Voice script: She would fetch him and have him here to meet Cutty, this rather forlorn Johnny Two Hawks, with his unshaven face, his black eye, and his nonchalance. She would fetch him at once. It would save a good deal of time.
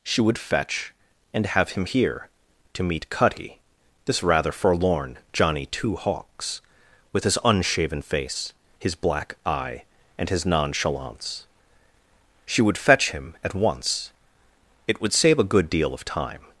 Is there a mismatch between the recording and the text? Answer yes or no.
yes